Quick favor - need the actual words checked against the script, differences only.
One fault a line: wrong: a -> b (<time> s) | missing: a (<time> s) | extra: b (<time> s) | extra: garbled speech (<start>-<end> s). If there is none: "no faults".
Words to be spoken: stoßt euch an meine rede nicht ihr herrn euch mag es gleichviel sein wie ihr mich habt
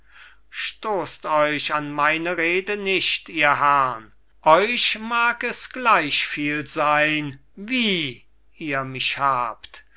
no faults